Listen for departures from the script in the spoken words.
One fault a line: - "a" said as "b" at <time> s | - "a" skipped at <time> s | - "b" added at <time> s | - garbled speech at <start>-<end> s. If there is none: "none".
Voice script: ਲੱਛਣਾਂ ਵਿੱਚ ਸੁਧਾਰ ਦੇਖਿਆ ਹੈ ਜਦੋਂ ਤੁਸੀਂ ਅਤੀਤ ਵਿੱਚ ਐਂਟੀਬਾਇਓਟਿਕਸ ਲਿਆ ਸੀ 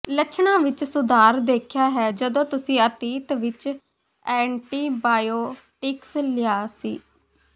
none